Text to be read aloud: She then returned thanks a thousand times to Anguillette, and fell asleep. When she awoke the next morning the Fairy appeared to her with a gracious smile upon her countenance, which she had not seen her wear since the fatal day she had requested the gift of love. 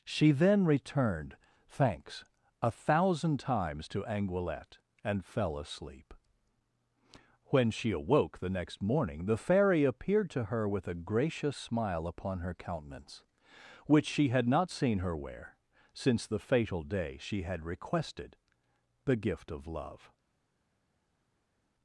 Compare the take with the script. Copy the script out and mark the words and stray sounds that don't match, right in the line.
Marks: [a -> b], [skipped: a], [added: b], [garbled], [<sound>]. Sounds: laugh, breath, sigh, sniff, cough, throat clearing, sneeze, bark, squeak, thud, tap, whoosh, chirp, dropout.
She then returned thanks a thousand times to Anguillette, and fell asleep. When she awoke the next morning the Fairy appeared to her with a gracious smile upon her countenance, which she had not seen her wear since the fatal day she had requested the gift of love.